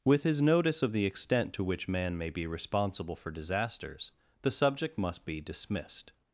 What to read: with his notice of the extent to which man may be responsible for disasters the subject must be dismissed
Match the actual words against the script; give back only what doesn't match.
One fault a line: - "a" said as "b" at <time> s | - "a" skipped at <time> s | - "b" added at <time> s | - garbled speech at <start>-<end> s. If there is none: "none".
none